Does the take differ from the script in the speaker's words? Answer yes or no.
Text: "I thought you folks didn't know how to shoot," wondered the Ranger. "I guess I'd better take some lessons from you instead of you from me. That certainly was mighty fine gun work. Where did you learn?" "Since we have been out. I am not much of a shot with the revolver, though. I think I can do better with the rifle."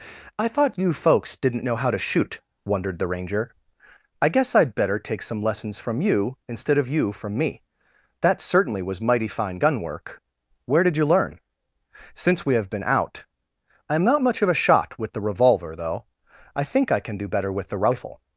no